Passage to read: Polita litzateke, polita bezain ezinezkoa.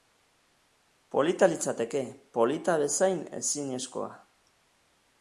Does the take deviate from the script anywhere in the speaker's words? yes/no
no